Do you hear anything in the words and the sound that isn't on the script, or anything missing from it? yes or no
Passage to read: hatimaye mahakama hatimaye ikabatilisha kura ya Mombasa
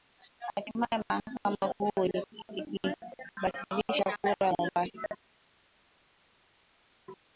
yes